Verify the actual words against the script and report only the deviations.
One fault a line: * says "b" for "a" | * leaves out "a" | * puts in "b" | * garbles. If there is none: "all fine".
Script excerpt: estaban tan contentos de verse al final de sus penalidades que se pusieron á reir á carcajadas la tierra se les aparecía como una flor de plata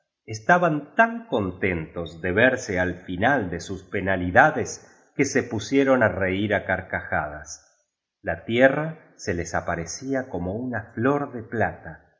all fine